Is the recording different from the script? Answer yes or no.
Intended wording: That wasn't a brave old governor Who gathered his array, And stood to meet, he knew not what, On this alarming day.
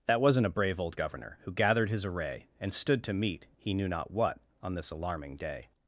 no